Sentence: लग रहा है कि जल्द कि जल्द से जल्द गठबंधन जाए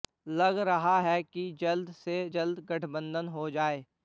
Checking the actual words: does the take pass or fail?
fail